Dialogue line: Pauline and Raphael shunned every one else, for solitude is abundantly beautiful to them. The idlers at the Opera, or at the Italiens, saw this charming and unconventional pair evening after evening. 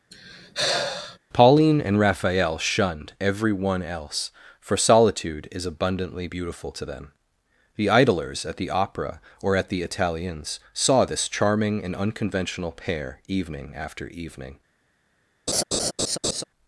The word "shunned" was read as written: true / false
true